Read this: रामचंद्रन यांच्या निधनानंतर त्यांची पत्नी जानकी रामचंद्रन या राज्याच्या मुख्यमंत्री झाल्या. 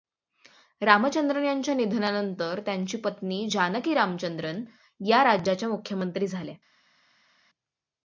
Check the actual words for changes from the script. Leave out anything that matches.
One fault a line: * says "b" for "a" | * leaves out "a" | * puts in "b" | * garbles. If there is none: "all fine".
all fine